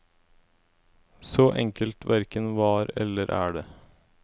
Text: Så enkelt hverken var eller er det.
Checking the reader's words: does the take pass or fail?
pass